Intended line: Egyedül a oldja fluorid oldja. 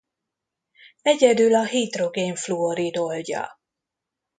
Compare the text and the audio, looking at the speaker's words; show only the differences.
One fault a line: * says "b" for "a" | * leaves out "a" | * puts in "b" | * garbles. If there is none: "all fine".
* says "hidrogén" for "oldja"